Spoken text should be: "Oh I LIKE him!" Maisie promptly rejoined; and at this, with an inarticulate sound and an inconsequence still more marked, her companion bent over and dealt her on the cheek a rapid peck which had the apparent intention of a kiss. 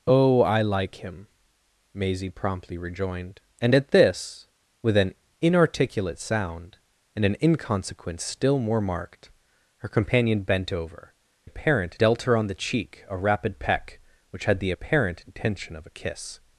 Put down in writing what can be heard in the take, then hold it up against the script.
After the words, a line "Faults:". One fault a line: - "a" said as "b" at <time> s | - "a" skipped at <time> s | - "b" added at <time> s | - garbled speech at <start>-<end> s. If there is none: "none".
"Oh I LIKE him!" Maisie promptly rejoined; and at this, with an inarticulate sound and an inconsequence still more marked, her companion bent over apparent dealt her on the cheek a rapid peck which had the apparent intention of a kiss.
Faults:
- "and" said as "apparent" at 11.4 s